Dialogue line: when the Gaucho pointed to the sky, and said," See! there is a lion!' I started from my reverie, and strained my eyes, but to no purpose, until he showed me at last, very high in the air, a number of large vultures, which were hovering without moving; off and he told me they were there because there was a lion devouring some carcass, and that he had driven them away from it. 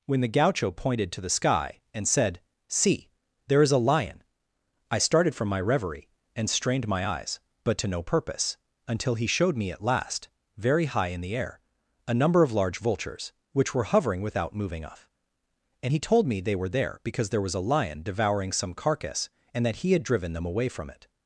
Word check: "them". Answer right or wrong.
right